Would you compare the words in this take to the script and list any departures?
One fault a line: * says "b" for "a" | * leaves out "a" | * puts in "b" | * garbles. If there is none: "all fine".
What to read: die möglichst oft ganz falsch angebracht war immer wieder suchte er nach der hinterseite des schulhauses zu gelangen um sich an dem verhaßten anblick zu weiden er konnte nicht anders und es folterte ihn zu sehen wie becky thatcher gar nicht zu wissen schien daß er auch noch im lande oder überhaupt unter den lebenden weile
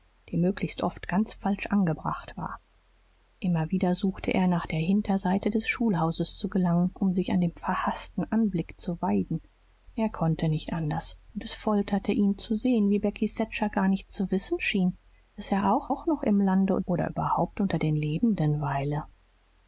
* puts in "auch"